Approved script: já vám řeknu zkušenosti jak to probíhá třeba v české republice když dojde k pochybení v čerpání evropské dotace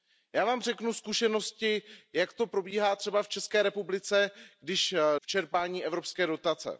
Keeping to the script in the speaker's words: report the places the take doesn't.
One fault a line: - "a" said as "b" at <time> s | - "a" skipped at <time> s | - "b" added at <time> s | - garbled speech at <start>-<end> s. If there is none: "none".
- "dojde k pochybení" skipped at 5.0 s